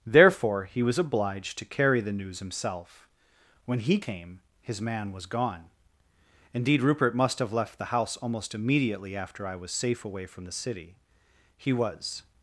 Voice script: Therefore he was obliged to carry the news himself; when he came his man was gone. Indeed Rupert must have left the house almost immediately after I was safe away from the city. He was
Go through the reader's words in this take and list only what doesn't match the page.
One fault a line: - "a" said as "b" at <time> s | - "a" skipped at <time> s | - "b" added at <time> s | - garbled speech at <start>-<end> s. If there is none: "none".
none